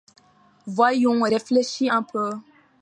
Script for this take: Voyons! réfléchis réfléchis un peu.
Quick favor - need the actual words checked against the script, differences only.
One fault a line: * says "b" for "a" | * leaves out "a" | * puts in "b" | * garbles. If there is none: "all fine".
* leaves out "réfléchis"